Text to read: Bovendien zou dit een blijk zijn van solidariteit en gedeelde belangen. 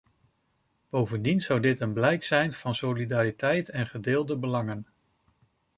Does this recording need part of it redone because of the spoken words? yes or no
no